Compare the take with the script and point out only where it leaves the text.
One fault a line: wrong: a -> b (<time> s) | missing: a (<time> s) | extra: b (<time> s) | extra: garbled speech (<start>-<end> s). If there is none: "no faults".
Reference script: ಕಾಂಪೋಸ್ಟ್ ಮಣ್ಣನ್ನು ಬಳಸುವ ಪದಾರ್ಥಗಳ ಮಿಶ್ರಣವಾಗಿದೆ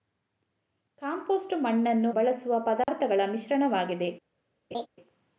no faults